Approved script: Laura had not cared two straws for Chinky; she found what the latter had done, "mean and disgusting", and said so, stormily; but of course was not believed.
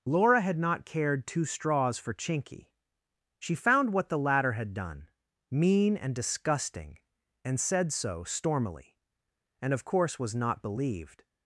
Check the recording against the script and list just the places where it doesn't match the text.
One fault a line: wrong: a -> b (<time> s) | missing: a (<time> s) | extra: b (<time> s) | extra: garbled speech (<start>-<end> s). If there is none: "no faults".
wrong: but -> and (9.6 s)